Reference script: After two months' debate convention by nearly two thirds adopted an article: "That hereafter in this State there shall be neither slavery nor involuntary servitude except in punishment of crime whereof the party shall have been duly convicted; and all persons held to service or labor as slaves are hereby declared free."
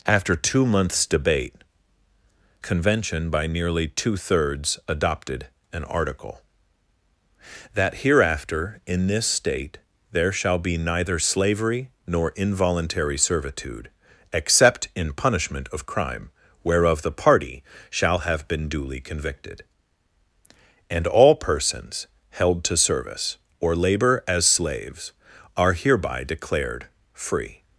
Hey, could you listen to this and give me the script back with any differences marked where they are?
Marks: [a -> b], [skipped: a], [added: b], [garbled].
After two months' debate convention by nearly two thirds adopted an article: "That hereafter in this State there shall be neither slavery nor involuntary servitude except in punishment of crime whereof the party shall have been duly convicted; and all persons held to service or labor as slaves are hereby declared free."